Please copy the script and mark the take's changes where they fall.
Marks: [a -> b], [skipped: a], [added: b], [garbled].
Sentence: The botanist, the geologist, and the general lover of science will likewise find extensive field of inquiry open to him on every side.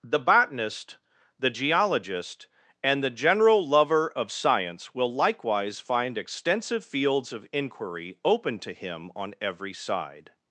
The botanist, the geologist, and the general lover of science will likewise find extensive [field -> fields] of inquiry open to him on every side.